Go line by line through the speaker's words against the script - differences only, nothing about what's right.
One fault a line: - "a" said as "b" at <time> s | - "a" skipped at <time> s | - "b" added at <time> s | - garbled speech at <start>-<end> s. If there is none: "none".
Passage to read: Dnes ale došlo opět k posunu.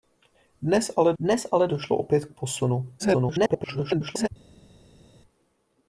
- "dnes ale" added at 1.2 s
- garbled speech at 3.0-4.3 s